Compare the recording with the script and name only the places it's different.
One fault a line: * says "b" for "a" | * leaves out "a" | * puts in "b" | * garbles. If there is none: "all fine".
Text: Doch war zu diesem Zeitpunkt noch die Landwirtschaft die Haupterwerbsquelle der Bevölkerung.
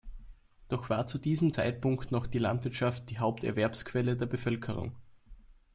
all fine